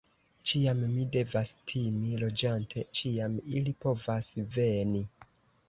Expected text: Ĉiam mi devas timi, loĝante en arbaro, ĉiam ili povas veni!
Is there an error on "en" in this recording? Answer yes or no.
yes